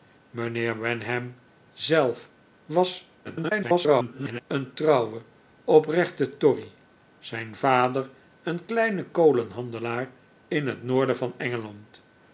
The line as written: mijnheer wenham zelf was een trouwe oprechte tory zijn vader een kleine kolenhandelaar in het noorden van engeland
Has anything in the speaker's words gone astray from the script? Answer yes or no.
yes